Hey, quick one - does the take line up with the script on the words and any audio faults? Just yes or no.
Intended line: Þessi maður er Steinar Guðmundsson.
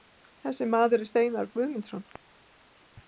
yes